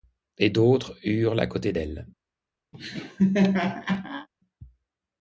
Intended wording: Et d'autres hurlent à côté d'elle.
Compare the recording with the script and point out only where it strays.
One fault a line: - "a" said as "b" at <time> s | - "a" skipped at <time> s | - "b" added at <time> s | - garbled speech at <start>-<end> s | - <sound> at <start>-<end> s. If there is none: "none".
- laugh at 2.7-4.3 s